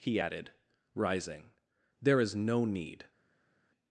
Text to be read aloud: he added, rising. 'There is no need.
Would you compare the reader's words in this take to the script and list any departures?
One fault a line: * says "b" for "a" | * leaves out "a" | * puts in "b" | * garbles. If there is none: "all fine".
all fine